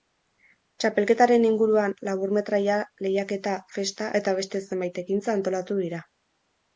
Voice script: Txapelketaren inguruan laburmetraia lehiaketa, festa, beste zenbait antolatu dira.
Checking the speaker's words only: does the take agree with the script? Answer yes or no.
no